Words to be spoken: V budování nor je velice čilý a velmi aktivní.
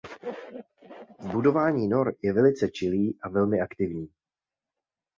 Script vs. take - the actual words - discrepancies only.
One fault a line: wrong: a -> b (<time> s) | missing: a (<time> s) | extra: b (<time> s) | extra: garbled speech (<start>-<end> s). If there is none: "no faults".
no faults